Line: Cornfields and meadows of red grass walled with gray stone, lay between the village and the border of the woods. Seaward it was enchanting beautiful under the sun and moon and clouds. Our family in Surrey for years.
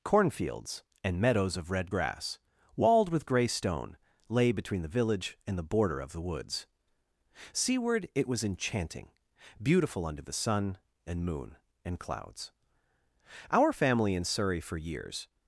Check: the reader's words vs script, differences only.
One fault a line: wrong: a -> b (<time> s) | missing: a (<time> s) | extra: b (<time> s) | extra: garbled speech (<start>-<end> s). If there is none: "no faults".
no faults